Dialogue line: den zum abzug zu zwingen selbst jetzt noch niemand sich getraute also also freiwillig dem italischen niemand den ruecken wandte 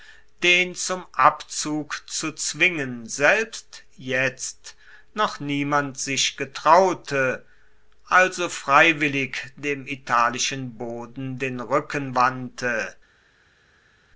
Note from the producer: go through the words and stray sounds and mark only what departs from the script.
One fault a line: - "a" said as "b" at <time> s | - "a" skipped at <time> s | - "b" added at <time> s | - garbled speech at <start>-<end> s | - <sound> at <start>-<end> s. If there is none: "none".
- "also" skipped at 8.5 s
- "niemand" said as "boden" at 10.8 s